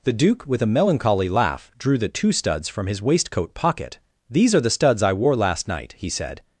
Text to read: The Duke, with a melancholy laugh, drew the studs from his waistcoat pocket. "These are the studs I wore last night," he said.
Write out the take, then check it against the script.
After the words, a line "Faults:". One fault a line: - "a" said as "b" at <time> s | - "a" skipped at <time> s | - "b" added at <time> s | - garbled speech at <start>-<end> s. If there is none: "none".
The Duke, with a melancholy laugh, drew the two studs from his waistcoat pocket. "These are the studs I wore last night," he said.
Faults:
- "two" added at 2.1 s